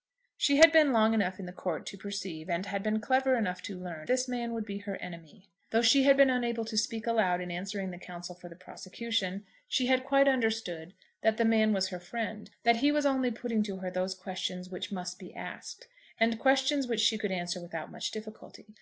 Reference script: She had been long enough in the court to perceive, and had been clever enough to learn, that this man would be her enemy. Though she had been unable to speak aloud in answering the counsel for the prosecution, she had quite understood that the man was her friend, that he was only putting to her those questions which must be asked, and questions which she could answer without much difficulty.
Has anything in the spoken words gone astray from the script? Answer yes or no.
yes